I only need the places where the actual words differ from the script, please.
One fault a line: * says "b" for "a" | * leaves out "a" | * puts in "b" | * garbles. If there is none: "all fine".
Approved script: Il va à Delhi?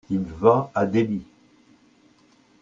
all fine